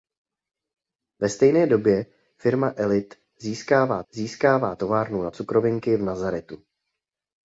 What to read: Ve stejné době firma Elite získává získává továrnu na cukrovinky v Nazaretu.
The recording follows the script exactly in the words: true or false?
true